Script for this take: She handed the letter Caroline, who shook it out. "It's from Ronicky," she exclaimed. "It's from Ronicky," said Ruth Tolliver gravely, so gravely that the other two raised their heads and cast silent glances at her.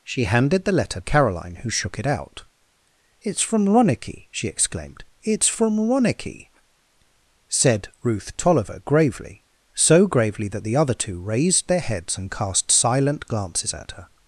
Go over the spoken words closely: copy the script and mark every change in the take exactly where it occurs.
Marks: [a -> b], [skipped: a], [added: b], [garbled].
She handed the letter Caroline, who shook it out. "It's from Ronicky," she exclaimed. "It's from Ronicky," said Ruth Tolliver gravely, so gravely that the other two raised their heads and cast silent glances at her.